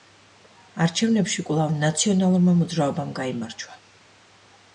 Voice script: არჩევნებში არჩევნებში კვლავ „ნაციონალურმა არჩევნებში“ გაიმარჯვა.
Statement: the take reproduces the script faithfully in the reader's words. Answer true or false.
false